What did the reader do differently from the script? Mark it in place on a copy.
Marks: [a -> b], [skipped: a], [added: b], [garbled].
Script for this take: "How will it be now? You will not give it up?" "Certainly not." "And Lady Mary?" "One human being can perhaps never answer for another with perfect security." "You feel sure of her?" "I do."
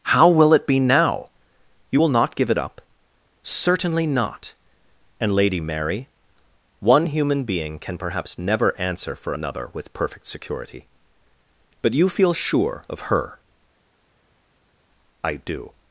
"How will it be now? You will not give it up?" "Certainly not." "And Lady Mary?" "One human being can perhaps never answer for another with perfect security." [added: But] "You feel sure of her?" "I do."